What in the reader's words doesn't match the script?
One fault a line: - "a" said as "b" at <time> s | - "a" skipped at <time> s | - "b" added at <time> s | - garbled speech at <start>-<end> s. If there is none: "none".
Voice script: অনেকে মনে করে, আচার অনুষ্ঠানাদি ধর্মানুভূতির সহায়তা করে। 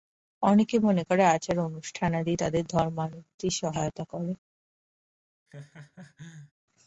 - "তাদের" added at 2.3 s